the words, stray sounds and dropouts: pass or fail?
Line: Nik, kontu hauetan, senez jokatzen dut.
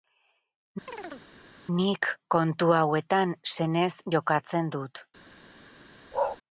fail